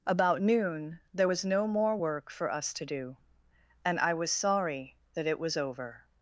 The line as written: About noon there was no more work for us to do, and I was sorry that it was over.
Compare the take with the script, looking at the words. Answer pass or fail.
pass